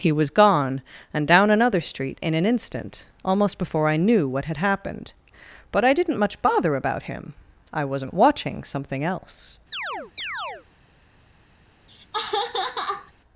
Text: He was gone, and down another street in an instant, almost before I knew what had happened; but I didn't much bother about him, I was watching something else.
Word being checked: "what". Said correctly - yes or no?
yes